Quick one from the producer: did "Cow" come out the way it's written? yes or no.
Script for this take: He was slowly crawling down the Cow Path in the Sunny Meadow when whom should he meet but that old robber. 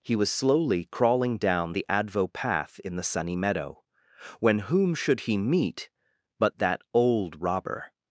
no